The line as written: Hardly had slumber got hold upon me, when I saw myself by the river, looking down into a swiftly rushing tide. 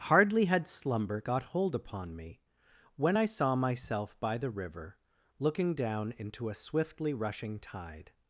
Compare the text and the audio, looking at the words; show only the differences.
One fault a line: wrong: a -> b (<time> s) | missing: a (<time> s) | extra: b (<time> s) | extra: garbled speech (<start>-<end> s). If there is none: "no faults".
no faults